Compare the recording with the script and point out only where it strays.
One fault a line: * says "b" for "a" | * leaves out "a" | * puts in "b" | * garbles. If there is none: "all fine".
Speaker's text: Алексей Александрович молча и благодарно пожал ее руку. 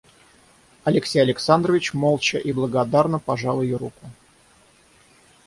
all fine